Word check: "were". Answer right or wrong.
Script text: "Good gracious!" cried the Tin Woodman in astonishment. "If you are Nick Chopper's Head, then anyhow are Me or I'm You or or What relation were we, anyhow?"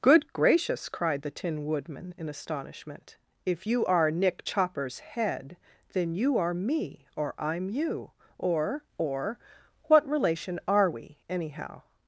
wrong